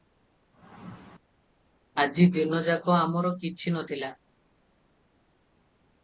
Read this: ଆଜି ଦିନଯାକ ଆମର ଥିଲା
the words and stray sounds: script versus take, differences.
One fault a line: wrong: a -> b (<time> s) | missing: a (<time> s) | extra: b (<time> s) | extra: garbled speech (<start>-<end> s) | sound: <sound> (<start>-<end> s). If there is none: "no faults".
extra: କିଛି ନ (3.4 s)